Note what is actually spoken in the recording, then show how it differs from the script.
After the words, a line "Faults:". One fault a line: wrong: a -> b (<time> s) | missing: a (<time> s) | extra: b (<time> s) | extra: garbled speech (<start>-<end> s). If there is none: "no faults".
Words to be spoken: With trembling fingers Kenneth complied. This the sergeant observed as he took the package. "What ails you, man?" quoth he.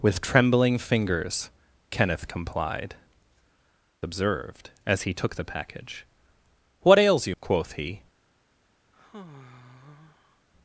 With trembling fingers Kenneth complied. Observed as he took the package. "What ails you?" quoth he.
Faults:
missing: This the sergeant (3.0 s)
missing: man (7.3 s)